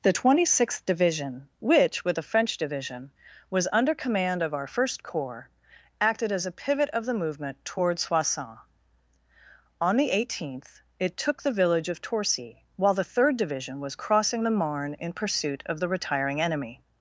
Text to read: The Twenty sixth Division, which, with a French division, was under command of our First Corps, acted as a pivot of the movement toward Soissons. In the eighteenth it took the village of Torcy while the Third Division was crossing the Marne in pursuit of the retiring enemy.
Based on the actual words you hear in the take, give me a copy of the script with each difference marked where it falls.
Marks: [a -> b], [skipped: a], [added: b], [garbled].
The Twenty sixth Division, which, with a French division, was under command of our First Corps, acted as a pivot of the movement toward Soissons. [In -> On] the eighteenth it took the village of Torcy while the Third Division was crossing the Marne in pursuit of the retiring enemy.